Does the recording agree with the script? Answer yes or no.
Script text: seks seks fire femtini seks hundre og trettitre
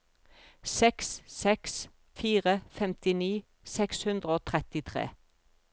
yes